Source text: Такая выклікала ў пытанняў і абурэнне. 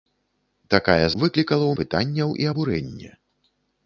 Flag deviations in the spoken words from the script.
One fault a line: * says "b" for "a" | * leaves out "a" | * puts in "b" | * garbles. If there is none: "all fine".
all fine